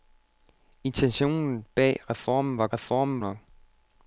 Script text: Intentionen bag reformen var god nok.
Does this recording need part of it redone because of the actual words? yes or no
yes